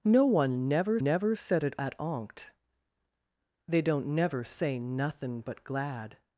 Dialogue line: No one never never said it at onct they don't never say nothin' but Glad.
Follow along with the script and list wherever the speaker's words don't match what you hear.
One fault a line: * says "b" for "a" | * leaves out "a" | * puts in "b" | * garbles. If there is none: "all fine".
all fine